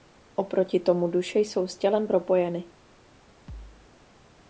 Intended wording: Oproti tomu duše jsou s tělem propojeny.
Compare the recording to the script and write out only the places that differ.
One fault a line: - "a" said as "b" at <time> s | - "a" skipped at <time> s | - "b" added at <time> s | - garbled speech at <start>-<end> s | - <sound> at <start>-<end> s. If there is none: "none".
- thud at 3.5-3.9 s